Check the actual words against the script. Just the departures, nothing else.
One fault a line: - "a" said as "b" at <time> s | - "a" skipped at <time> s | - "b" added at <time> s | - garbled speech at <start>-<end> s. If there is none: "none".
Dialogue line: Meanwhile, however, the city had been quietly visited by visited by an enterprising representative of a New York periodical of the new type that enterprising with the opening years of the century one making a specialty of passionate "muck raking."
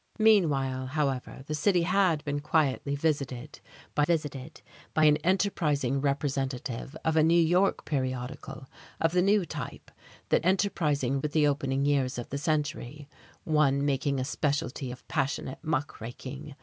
none